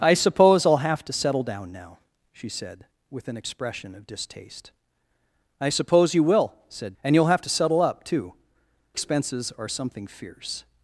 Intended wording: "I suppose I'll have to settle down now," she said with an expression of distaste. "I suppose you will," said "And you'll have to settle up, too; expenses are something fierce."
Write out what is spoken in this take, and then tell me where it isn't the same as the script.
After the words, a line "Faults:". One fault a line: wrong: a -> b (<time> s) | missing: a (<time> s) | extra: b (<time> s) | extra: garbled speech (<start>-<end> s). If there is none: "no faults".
"I suppose I'll have to settle down now," she said with an expression of distaste. "I suppose you will," said "And you'll have to settle up, too; expenses are something fierce."
Faults:
no faults